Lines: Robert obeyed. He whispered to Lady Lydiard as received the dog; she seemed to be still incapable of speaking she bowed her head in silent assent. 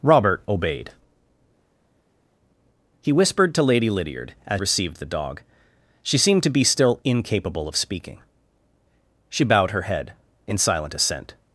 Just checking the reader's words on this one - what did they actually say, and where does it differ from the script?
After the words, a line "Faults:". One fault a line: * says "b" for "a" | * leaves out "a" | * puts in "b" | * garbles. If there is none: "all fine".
Robert obeyed. He whispered to Lady Lydiard as received the dog; she seemed to be still incapable of speaking she bowed her head in silent assent.
Faults:
all fine